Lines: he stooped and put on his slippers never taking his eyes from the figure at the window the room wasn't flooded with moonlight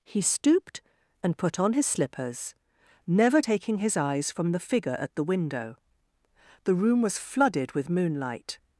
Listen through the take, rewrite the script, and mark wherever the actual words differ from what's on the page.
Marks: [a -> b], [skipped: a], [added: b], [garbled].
he stooped and put on his slippers never taking his eyes from the figure at the window the room [wasn't -> was] flooded with moonlight